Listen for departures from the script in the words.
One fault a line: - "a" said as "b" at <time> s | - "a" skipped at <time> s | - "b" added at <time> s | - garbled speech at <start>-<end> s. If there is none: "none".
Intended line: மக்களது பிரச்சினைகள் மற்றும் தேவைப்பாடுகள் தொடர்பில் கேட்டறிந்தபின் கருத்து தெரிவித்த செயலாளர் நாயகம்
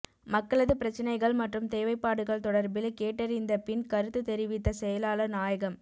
none